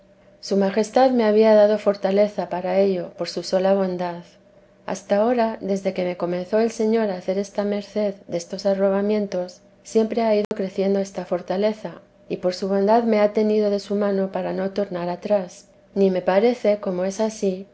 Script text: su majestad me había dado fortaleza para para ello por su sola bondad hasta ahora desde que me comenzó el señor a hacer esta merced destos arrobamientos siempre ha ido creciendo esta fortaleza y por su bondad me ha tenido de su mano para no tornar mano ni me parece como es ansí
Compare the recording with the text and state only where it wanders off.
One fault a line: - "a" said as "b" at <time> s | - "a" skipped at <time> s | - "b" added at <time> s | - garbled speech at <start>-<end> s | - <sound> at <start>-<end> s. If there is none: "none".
- "para" skipped at 2.8 s
- dropout at 10.4-10.5 s
- "mano" said as "atrás" at 15.1 s